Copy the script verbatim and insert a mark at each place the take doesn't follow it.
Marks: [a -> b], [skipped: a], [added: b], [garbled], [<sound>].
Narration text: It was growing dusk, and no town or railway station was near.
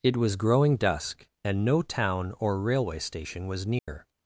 It was growing dusk, and no town or railway station was near. [dropout]